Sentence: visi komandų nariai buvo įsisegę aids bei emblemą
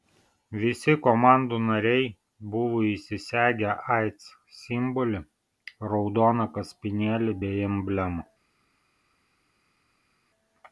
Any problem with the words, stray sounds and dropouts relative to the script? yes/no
yes